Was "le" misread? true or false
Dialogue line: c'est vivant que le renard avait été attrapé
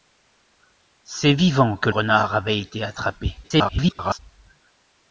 true